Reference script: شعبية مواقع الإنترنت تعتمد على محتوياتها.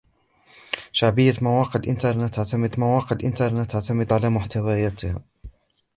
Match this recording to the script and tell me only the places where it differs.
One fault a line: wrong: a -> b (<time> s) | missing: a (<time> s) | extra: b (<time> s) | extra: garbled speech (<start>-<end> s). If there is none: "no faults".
extra: مواقع الإنترنت تعتمد (2.8 s)